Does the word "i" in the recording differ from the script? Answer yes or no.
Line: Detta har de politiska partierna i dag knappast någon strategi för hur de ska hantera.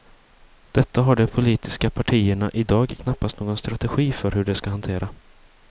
no